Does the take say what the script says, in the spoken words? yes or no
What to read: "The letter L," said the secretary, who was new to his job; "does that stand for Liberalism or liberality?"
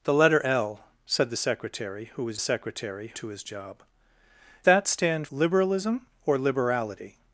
no